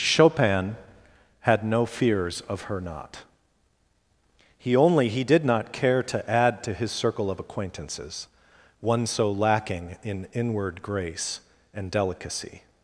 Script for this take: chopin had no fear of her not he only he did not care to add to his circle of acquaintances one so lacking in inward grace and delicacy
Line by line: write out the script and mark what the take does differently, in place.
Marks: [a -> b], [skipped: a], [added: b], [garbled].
chopin had no [fear -> fears] of her not he only he did not care to add to his circle of acquaintances one so lacking in inward grace and delicacy